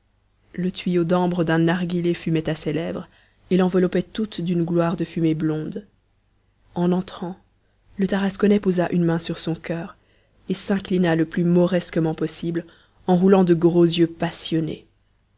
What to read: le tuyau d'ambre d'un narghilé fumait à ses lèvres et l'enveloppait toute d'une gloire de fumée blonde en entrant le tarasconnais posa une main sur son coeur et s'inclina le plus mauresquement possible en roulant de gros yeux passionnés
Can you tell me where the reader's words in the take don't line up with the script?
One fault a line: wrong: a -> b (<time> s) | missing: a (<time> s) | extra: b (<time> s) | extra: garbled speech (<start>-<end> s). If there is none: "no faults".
no faults